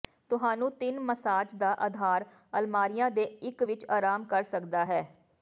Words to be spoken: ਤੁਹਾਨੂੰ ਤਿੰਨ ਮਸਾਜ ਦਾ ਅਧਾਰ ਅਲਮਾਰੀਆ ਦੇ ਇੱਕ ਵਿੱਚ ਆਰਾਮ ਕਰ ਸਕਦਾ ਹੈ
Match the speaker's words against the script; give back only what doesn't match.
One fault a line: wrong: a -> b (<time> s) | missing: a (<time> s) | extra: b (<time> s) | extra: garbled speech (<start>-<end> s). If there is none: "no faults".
no faults